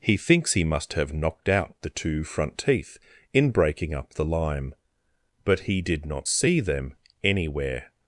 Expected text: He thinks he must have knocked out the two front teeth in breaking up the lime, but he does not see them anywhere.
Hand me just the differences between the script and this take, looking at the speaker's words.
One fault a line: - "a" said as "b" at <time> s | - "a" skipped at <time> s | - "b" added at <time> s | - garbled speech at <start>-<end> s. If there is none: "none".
- "does" said as "did" at 5.8 s